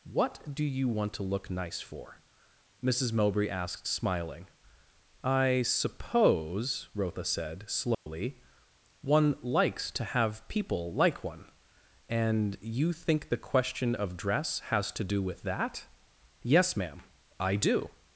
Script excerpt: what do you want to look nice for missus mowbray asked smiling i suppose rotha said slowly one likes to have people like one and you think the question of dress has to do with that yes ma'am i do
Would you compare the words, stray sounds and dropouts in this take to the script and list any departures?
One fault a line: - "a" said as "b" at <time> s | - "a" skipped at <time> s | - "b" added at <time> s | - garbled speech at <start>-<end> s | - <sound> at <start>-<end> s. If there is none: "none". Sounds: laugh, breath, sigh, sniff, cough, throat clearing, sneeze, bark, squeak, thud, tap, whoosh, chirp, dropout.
- dropout at 7.9-8.1 s